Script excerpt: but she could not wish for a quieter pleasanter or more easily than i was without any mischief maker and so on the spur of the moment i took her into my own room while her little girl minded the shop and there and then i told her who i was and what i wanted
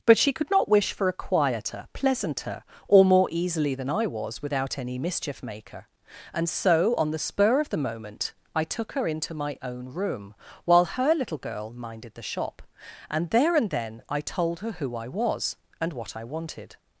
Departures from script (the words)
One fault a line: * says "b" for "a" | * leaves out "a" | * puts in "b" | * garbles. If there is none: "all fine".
all fine